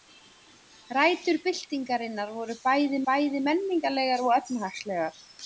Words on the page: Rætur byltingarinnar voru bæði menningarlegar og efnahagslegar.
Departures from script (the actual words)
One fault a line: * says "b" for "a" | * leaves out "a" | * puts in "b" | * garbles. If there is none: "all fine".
* puts in "bæði"